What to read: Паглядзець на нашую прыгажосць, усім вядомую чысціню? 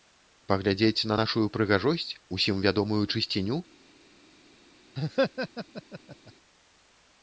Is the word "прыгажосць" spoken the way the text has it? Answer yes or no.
yes